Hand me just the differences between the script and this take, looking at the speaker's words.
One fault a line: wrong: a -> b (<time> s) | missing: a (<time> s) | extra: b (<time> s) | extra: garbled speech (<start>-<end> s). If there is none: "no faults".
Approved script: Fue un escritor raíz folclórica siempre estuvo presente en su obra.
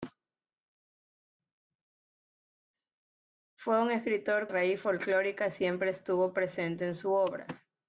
no faults